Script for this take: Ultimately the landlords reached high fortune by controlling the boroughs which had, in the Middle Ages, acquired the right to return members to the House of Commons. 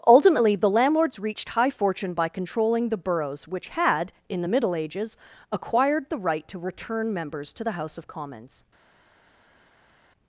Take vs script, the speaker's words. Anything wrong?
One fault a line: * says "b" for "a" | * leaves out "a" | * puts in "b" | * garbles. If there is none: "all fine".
all fine